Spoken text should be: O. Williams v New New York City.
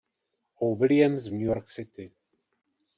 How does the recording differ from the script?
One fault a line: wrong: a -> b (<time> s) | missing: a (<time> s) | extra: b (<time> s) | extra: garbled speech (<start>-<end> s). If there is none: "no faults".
missing: New (1.5 s)